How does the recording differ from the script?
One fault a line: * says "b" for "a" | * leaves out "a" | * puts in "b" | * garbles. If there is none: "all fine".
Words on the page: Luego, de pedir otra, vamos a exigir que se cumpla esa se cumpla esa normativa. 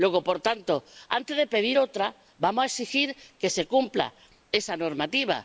* puts in "por tanto antes"
* leaves out "se cumpla esa"